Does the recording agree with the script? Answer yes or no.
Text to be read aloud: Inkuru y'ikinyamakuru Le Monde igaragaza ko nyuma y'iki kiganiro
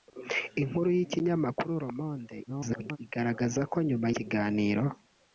no